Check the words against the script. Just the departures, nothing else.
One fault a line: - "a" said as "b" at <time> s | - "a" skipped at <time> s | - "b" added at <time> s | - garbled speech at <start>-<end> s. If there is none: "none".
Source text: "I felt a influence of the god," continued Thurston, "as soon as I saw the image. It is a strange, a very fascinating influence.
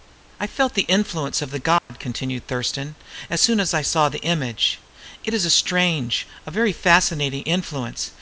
- "a" said as "the" at 0.7 s